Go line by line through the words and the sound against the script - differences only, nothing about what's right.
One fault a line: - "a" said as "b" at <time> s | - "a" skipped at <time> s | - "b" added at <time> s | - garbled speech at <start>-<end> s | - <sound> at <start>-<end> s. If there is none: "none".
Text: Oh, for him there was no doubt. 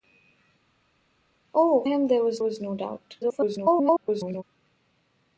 - "for" skipped at 1.8 s
- "was" added at 2.4 s
- garbled speech at 3.2-4.4 s